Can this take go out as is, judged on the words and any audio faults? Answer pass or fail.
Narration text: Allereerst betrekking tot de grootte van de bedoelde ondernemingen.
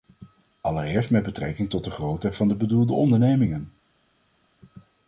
fail